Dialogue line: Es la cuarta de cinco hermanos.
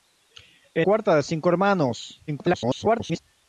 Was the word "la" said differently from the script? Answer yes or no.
yes